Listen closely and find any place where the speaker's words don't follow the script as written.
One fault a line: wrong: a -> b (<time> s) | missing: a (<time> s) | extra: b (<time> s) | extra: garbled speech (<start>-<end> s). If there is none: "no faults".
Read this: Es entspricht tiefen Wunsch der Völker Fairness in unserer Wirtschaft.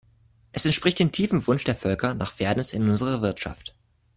extra: dem (1.0 s)
extra: nach (2.1 s)